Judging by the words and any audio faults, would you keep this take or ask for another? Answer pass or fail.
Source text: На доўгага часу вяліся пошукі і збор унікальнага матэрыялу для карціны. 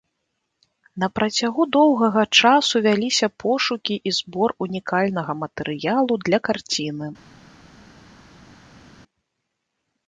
fail